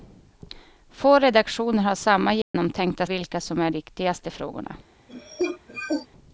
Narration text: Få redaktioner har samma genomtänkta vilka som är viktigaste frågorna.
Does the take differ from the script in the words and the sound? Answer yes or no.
yes